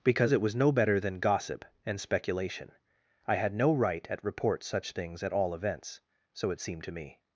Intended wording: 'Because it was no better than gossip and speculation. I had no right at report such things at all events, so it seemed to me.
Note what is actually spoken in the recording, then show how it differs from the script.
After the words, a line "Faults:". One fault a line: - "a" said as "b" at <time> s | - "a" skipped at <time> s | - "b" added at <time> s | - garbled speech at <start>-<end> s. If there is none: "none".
'Because it was no better than gossip and speculation. I had no right at report such things at all events, so it seemed to me.
Faults:
none